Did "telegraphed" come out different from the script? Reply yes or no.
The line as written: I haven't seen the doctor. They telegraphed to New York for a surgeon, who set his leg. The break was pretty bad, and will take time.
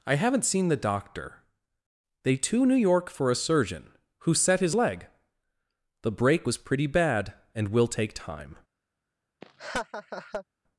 yes